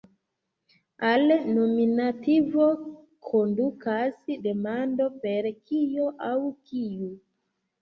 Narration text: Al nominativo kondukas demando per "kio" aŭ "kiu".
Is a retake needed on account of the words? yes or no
no